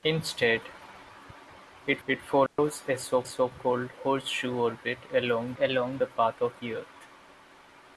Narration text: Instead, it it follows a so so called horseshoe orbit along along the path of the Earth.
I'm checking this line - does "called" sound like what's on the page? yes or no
yes